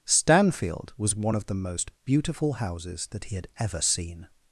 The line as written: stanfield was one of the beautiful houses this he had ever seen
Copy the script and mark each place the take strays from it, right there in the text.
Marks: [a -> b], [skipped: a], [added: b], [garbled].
stanfield was one of the [added: most] beautiful houses [this -> that] he had ever seen